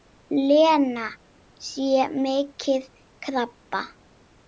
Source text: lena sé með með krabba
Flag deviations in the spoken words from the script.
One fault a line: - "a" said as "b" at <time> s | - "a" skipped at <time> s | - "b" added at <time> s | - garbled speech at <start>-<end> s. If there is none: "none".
- "með" skipped at 2.5 s